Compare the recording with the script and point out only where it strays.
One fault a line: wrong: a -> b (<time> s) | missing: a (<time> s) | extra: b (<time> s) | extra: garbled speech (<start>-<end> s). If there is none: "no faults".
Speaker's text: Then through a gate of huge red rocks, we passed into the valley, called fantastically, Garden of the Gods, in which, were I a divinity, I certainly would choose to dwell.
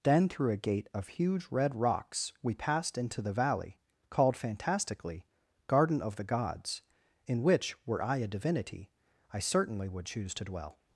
no faults